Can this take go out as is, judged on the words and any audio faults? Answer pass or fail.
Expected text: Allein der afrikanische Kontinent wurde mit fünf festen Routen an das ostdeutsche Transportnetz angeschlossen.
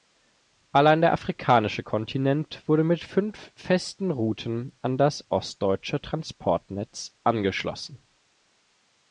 pass